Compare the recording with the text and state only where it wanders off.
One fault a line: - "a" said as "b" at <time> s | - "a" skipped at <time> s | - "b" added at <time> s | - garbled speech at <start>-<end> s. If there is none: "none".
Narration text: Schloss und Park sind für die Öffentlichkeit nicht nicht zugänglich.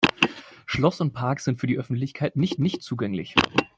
none